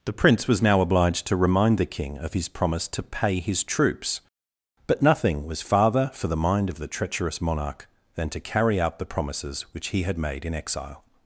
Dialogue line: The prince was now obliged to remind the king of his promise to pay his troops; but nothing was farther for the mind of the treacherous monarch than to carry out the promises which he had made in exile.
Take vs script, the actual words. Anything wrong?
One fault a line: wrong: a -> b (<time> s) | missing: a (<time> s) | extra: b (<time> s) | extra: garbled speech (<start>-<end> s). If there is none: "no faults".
no faults